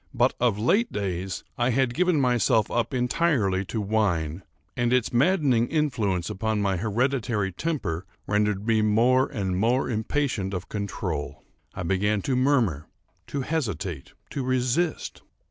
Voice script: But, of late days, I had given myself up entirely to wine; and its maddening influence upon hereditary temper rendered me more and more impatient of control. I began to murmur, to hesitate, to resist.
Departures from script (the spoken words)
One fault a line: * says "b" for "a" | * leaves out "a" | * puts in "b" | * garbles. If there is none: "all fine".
* puts in "my"